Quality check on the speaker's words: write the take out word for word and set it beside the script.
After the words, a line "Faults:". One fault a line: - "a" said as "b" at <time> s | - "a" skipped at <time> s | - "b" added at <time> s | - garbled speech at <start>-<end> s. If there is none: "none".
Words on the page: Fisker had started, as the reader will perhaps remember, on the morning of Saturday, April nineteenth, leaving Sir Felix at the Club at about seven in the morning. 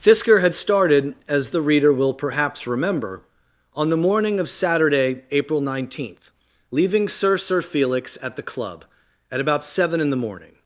Fisker had started, as the reader will perhaps remember, on the morning of Saturday, April nineteenth, leaving Sir Sir Felix at the Club at about seven in the morning.
Faults:
- "Sir" added at 7.4 s